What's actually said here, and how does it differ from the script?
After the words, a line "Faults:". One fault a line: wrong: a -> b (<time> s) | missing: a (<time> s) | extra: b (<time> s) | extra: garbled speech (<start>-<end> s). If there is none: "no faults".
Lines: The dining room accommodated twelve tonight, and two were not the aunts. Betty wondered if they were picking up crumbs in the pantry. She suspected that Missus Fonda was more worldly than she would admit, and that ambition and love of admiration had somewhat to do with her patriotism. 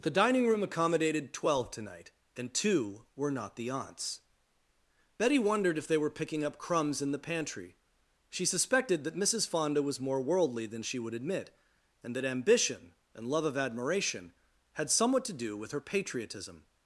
The dining room accommodated twelve tonight, and two were not the aunts. Betty wondered if they were picking up crumbs in the pantry. She suspected that Missus Fonda was more worldly than she would admit, and that ambition and love of admiration had somewhat to do with her patriotism.
Faults:
no faults